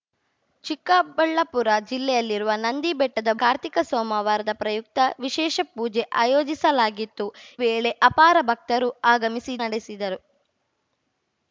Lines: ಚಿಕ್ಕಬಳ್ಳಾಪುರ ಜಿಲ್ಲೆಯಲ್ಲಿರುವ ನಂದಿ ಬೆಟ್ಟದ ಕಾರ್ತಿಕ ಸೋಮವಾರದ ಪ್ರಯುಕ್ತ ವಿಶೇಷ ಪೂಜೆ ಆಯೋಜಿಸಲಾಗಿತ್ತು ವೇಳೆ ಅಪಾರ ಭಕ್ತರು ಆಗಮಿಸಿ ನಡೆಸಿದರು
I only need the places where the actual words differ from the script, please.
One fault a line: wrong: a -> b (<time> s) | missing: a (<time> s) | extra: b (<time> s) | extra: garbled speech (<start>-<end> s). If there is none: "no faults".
no faults